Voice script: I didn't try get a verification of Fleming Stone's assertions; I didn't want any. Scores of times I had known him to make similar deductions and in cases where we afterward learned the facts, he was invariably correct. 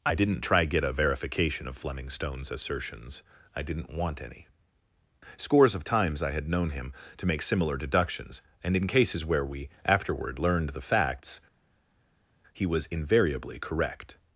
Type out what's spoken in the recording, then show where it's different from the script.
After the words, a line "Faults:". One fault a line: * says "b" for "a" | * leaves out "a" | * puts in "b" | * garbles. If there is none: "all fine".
I didn't try get a verification of Fleming Stone's assertions; I didn't want any. Scores of times I had known him to make similar deductions and in cases where we afterward learned the facts, he was invariably correct.
Faults:
all fine